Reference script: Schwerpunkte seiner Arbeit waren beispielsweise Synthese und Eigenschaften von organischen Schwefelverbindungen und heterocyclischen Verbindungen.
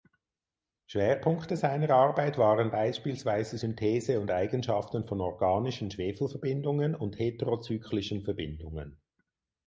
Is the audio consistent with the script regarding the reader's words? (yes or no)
yes